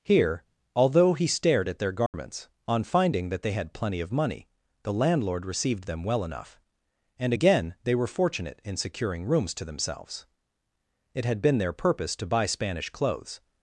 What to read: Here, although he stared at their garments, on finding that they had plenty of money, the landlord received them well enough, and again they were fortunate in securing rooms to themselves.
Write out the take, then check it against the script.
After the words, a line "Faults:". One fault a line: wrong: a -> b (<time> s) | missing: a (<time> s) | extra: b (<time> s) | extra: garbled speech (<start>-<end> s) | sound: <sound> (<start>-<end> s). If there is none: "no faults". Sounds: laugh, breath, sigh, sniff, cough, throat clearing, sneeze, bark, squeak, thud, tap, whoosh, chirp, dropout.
Here, although he stared at their garments, on finding that they had plenty of money, the landlord received them well enough, and again they were fortunate in securing rooms to themselves. It had been their purpose to buy Spanish clothes
Faults:
sound: dropout (2.1-2.1 s)
extra: It had been their purpose to buy Spanish clothes (11.1 s)